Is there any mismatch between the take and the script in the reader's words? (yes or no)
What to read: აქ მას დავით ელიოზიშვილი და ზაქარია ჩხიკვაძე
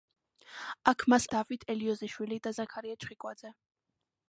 no